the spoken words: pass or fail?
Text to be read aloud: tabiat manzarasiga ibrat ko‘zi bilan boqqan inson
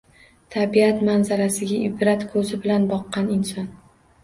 pass